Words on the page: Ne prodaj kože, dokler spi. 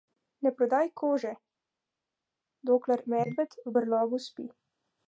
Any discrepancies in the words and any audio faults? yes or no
yes